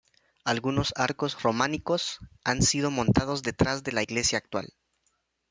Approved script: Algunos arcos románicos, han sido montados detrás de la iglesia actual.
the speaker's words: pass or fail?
pass